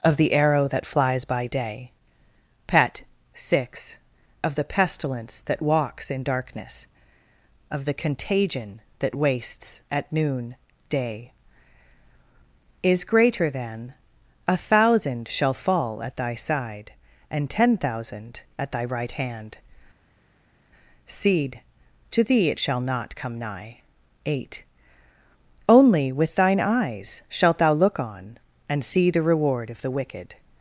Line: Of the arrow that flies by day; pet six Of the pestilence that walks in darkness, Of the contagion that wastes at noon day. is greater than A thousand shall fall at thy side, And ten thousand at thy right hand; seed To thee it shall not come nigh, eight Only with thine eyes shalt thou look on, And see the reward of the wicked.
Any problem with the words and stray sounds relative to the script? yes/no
no